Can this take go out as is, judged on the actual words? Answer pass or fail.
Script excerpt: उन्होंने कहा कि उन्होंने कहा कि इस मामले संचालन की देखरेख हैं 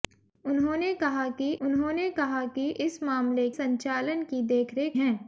pass